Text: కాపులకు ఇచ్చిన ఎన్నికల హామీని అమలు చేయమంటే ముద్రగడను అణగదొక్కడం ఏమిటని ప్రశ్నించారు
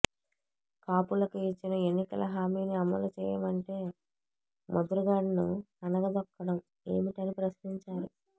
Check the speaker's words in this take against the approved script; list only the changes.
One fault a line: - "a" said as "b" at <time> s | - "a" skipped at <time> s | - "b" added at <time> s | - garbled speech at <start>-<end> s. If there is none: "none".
none